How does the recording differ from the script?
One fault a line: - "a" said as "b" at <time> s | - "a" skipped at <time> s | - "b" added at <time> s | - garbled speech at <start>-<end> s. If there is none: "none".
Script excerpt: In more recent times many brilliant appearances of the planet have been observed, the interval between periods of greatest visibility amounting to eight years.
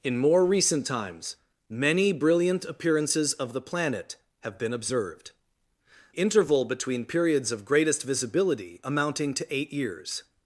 - "the" skipped at 5.3 s